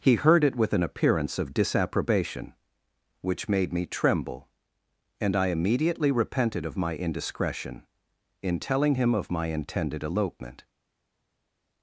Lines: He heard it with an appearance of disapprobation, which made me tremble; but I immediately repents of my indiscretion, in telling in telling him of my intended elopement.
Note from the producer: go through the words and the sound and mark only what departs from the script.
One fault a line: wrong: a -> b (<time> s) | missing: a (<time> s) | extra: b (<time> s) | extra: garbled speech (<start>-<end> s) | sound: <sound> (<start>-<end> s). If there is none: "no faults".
wrong: but -> and (5.2 s)
wrong: repents -> repented (6.1 s)
missing: in telling (8.9 s)